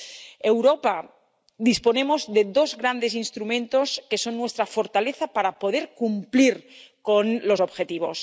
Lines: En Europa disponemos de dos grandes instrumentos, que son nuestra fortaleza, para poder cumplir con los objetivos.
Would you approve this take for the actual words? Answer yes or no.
yes